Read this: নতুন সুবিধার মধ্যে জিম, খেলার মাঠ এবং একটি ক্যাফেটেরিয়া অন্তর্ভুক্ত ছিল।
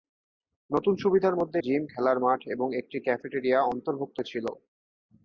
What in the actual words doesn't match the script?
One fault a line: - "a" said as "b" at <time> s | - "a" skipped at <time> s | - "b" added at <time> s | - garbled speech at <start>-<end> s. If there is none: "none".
none